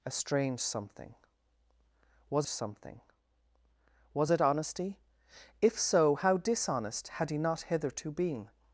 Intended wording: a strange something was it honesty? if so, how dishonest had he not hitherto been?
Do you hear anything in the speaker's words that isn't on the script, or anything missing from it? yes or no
yes